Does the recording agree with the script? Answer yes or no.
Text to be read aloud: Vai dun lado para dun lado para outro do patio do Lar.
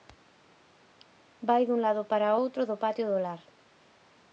no